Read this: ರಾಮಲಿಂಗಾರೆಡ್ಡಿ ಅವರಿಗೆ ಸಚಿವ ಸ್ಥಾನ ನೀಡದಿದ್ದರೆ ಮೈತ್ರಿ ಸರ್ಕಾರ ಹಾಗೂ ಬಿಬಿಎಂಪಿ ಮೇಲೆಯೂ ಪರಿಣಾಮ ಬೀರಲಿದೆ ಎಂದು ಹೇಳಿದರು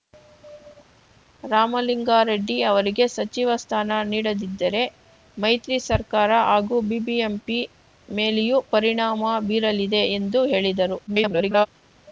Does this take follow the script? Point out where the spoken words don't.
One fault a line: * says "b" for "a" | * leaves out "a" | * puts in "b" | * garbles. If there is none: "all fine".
* garbles